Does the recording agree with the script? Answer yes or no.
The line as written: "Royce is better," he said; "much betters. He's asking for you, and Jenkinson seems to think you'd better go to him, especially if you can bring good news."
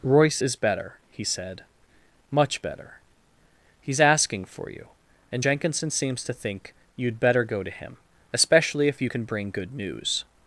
no